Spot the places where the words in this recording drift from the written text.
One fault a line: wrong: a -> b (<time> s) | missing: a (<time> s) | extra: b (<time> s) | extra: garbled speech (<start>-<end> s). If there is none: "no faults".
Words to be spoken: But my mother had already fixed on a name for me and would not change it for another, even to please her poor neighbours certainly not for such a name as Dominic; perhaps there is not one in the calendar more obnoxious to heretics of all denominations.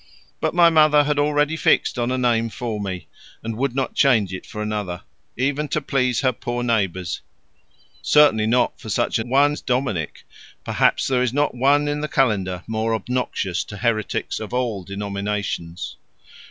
wrong: name -> one (9.2 s)